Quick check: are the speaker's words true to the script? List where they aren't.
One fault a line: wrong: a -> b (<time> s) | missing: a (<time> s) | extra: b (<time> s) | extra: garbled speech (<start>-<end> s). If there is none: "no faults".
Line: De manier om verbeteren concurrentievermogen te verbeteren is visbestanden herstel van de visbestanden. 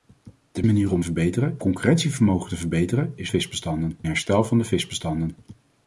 no faults